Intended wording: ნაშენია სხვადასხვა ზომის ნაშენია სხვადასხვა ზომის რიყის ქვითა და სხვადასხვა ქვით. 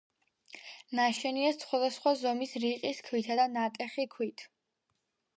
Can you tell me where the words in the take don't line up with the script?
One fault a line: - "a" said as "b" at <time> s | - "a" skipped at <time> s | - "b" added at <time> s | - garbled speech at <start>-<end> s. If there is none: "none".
- "ნაშენია სხვადასხვა ზომის" skipped at 2.6 s
- "სხვადასხვა" said as "ნატეხი" at 3.6 s